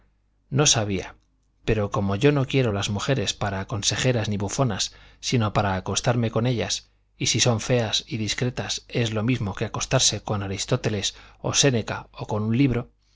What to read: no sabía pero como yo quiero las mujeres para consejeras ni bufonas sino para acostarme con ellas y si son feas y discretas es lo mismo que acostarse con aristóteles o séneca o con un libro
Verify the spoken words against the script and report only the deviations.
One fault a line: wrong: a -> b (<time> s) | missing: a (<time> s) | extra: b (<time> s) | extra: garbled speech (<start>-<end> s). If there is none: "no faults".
extra: no (2.3 s)